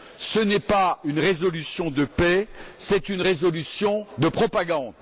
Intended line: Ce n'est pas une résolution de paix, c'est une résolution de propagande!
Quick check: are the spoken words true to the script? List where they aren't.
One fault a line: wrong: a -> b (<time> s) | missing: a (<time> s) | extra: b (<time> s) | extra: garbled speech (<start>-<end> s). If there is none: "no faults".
no faults